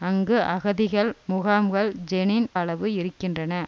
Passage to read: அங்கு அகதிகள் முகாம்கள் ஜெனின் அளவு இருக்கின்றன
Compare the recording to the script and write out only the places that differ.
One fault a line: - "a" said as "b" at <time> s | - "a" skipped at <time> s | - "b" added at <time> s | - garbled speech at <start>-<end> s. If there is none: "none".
none